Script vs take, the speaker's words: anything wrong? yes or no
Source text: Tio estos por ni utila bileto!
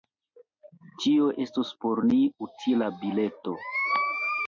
no